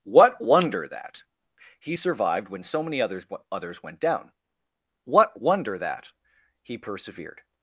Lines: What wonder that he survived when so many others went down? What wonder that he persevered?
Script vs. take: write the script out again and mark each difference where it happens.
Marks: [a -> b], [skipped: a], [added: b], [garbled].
What wonder that he survived when so many others [added: others] went down? What wonder that he persevered?